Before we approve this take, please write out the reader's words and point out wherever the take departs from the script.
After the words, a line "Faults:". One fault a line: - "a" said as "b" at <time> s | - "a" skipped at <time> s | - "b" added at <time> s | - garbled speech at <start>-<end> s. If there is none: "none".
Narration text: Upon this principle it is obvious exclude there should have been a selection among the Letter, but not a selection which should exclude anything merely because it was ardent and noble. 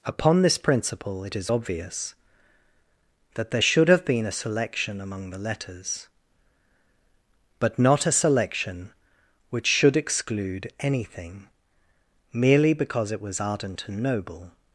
Upon this principle it is obvious that there should have been a selection among the Letters, but not a selection which should exclude anything merely because it was ardent and noble.
Faults:
- "exclude" said as "that" at 3.3 s
- "Letter" said as "Letters" at 5.4 s